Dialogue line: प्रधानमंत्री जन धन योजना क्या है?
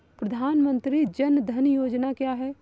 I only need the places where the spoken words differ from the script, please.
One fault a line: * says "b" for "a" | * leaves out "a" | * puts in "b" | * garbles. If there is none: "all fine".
all fine